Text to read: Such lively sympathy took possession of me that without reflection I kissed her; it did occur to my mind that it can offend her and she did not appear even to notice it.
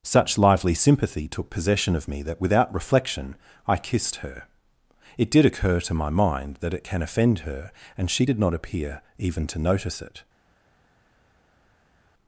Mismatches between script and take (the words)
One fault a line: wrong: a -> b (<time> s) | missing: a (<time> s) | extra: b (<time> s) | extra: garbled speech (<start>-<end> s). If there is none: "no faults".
no faults